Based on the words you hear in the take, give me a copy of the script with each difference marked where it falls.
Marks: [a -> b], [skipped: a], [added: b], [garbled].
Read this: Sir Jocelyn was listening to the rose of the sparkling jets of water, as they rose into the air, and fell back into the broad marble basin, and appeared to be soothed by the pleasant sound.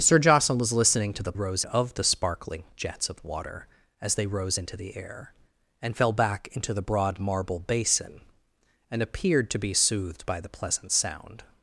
Sir Jocelyn was listening to the rose of the sparkling jets of water, as they rose into the air, and fell back into the broad marble basin, and appeared to be soothed by the pleasant sound.